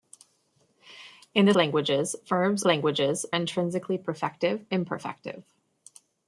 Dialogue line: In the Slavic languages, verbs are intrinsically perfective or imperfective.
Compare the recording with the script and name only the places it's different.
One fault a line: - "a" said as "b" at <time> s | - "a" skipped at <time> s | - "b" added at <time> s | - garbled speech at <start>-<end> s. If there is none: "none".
- "Slavic" skipped at 1.5 s
- "are" said as "languages" at 2.6 s
- "or" skipped at 4.7 s